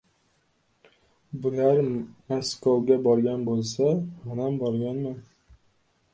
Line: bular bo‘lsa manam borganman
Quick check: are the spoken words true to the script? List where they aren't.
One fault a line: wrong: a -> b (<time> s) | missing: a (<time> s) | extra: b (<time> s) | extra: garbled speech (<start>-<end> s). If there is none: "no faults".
extra: maskovga borgan (2.3 s)